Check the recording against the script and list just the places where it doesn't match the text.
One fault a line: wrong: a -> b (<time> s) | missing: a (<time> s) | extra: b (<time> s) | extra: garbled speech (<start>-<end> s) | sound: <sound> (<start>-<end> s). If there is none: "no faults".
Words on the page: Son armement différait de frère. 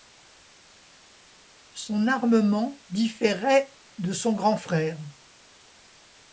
extra: son grand (4.1 s)